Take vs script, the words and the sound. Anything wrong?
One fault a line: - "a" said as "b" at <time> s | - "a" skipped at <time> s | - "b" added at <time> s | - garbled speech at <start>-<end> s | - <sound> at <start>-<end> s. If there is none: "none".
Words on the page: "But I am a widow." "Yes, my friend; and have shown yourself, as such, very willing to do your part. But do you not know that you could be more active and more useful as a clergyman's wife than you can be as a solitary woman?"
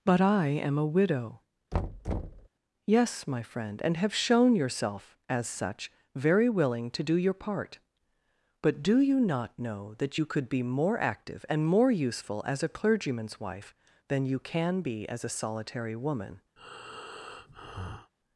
- thud at 1.7-2.5 s
- breath at 16.6-18.1 s